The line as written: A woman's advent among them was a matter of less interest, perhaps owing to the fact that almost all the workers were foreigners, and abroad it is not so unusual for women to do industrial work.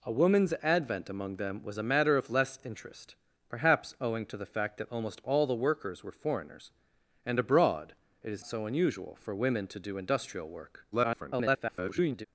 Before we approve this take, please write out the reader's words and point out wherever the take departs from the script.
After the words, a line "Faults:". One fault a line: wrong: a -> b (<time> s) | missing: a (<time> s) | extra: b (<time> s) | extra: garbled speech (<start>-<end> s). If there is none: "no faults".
A woman's advent among them was a matter of less interest, perhaps owing to the fact that almost all the workers were foreigners, and abroad it is so unusual for women to do industrial work. [garbled]
Faults:
missing: not (8.5 s)
extra: garbled speech (10.9-12.3 s)